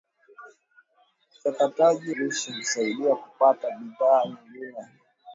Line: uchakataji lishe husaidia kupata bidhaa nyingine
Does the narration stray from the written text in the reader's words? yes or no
no